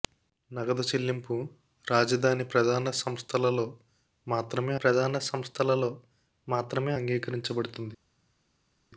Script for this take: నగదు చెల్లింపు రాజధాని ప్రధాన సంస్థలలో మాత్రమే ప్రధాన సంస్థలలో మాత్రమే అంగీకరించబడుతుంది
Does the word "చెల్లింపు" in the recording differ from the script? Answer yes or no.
no